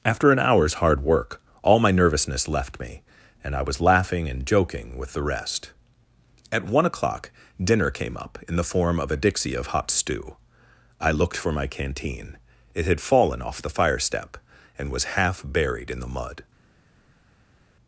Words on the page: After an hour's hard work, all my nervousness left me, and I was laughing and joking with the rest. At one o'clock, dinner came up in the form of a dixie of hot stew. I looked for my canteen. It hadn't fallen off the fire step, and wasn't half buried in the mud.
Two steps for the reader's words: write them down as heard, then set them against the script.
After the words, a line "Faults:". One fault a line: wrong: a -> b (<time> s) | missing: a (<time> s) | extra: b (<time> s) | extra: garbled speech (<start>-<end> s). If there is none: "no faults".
After an hour's hard work, all my nervousness left me, and I was laughing and joking with the rest. At one o'clock, dinner came up in the form of a dixie of hot stew. I looked for my canteen. It had fallen off the fire step, and was half buried in the mud.
Faults:
wrong: hadn't -> had (12.8 s)
wrong: wasn't -> was (14.9 s)